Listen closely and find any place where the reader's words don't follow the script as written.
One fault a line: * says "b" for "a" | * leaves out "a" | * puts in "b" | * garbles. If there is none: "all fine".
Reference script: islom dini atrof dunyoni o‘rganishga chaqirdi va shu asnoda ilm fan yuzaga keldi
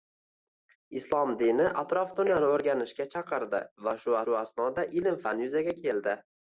* puts in "shu"